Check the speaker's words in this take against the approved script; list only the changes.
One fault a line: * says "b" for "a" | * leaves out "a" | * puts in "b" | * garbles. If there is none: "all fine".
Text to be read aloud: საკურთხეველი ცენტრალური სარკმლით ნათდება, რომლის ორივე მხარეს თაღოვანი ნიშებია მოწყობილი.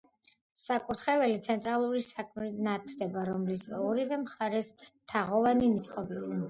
* leaves out "ნიშებია"